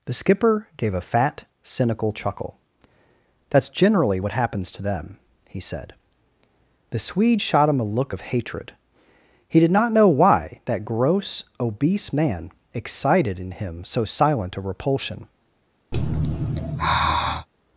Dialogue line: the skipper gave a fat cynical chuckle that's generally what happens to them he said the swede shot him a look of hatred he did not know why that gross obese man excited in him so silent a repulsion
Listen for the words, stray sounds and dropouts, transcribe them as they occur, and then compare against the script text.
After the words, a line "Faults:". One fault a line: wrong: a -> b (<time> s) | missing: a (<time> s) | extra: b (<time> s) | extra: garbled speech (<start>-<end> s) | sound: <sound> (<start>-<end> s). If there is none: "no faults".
the skipper gave a fat cynical chuckle that's generally what happens to them he said the swede shot him a look of hatred he did not know why that gross obese man excited in him so silent a repulsion
Faults:
sound: sigh (15.9-17.5 s)